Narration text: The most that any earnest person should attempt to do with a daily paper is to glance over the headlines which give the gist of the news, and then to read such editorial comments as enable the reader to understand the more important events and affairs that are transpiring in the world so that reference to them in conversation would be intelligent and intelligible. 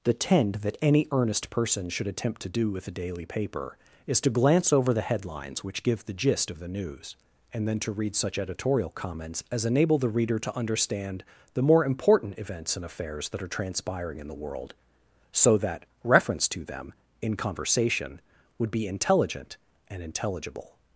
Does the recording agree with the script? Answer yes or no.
no